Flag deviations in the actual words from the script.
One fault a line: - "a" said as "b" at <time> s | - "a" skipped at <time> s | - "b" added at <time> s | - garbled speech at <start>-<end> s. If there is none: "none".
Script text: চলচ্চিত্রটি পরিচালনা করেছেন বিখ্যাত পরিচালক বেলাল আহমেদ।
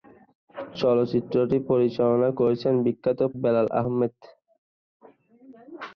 - "পরিচালক" skipped at 3.2 s